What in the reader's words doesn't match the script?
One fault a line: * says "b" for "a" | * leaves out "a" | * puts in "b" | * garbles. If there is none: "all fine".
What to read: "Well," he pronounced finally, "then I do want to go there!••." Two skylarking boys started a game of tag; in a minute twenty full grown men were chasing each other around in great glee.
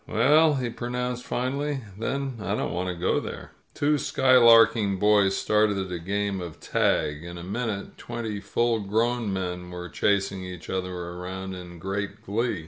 * says "don't" for "do"